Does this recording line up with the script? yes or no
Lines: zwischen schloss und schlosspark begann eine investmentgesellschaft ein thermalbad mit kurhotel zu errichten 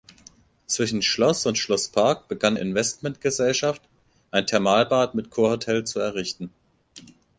no